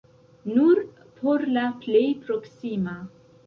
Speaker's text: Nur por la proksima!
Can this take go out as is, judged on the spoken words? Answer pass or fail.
fail